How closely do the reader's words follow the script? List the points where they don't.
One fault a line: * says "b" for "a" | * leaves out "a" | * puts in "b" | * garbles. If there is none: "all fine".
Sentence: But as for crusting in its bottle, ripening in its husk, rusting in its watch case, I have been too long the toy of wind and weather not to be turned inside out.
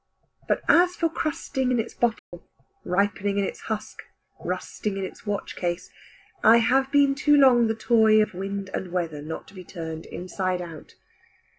all fine